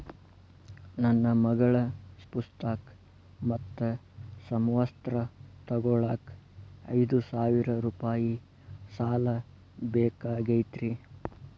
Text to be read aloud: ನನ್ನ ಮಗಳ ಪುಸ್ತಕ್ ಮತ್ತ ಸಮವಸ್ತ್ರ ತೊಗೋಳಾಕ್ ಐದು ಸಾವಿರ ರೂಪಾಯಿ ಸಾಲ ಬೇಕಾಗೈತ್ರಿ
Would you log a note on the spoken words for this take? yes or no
no